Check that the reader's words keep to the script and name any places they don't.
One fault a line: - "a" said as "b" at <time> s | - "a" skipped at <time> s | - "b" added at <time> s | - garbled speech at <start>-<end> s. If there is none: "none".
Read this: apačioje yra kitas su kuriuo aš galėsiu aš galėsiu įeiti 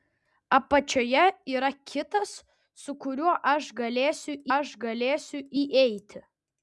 none